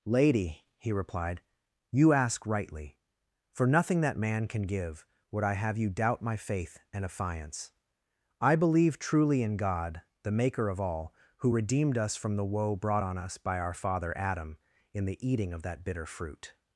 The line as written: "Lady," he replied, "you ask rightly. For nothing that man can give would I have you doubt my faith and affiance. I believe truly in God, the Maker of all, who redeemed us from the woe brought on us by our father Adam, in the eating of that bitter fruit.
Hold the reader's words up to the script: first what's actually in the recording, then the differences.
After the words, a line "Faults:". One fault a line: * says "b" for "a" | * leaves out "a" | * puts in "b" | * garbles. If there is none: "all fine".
"Lady," he replied, "you ask rightly. For nothing that man can give would I have you doubt my faith and affiance. I believe truly in God, the Maker of all, who redeemed us from the woe brought on us by our father Adam, in the eating of that bitter fruit.
Faults:
all fine